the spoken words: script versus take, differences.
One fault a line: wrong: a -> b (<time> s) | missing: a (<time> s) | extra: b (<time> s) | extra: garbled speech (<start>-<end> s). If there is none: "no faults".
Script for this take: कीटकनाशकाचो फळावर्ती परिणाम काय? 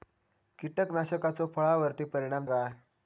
no faults